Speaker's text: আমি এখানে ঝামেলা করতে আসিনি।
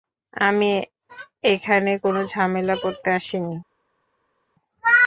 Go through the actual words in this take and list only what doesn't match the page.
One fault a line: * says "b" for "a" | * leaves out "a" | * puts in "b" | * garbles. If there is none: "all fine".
* puts in "কোনো"